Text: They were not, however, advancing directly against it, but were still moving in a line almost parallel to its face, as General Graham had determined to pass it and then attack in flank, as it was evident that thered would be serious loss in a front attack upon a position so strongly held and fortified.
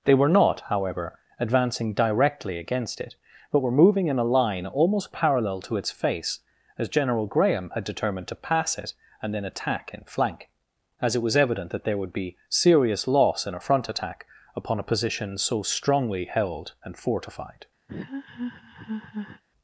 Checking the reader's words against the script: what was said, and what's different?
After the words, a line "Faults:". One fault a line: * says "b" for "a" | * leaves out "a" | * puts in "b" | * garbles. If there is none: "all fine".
They were not, however, advancing directly against it, but were moving in a line almost parallel to its face, as General Graham had determined to pass it and then attack in flank, as it was evident that there would be serious loss in a front attack upon a position so strongly held and fortified.
Faults:
* leaves out "still"
* says "there" for "thered"